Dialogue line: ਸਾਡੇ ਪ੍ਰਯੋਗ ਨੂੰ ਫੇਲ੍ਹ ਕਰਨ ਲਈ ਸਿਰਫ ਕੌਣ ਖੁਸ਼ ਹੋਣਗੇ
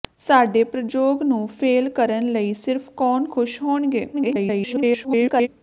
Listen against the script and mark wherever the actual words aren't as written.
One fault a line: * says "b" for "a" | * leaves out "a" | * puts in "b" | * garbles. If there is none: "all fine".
* garbles